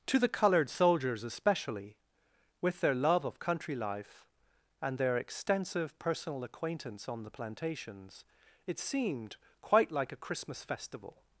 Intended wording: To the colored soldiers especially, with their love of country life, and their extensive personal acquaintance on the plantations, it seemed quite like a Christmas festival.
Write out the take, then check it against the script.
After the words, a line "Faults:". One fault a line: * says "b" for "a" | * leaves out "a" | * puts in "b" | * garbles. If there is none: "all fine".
To the colored soldiers especially, with their love of country life, and their extensive personal acquaintance on the plantations, it seemed quite like a Christmas festival.
Faults:
all fine